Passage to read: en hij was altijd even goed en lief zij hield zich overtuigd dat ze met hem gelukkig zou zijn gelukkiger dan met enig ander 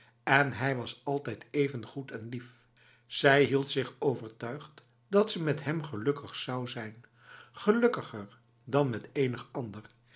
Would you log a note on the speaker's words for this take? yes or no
no